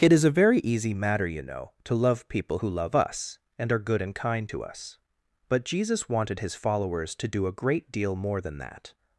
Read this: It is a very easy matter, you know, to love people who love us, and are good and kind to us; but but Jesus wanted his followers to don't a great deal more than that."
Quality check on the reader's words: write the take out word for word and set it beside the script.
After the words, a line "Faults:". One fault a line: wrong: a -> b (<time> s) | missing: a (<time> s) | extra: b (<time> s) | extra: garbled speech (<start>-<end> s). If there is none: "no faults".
It is a very easy matter, you know, to love people who love us, and are good and kind to us; but Jesus wanted his followers to do a great deal more than that."
Faults:
missing: but (5.6 s)
wrong: don't -> do (7.3 s)